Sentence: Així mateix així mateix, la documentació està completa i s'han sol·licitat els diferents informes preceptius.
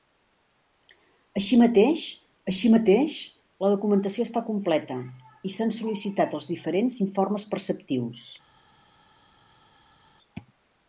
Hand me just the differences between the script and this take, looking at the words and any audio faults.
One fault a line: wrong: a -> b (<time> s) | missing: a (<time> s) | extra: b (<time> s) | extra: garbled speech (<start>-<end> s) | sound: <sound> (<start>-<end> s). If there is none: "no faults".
no faults